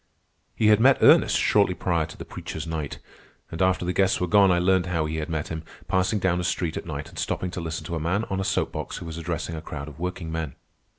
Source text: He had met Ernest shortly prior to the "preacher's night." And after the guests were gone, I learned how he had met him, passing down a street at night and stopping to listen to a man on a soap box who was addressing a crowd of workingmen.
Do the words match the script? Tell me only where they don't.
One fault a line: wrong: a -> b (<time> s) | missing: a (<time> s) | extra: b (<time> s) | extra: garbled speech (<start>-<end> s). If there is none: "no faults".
no faults